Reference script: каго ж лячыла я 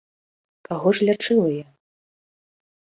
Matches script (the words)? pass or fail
pass